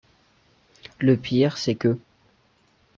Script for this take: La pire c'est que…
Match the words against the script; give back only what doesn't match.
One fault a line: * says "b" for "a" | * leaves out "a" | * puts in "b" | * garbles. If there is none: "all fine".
* says "Le" for "La"